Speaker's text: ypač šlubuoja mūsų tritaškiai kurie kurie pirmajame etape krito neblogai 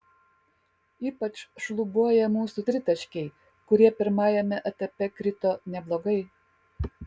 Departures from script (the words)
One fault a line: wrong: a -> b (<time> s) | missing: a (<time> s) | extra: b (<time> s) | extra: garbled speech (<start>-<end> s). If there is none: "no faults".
missing: kurie (3.9 s)